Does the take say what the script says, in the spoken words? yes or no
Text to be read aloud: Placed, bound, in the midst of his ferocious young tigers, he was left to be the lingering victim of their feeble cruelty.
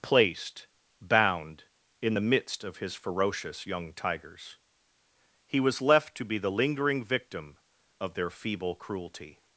yes